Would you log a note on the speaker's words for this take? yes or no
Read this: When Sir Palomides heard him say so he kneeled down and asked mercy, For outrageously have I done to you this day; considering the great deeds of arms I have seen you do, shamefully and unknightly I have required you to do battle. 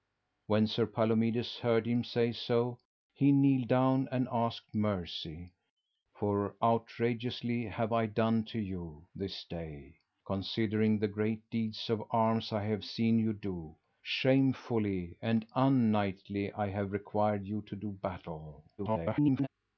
yes